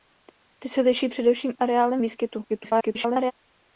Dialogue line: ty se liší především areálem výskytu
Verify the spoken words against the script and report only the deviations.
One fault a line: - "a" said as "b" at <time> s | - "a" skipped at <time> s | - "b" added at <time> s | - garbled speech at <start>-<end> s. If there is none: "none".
- garbled speech at 2.5-3.3 s